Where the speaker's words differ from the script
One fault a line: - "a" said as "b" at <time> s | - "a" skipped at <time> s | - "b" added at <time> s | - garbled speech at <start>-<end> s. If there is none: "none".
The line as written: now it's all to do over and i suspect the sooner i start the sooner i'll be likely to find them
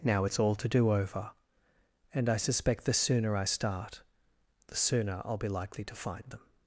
none